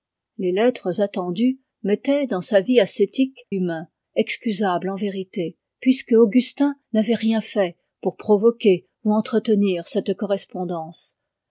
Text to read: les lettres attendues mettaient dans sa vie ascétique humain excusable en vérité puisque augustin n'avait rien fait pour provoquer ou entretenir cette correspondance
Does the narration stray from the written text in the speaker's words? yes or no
no